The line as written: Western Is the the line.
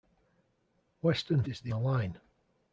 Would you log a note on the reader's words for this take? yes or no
no